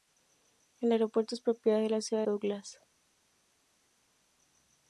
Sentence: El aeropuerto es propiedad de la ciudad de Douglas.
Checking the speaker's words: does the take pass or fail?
fail